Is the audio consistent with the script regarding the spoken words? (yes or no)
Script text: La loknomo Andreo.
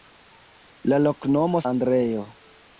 yes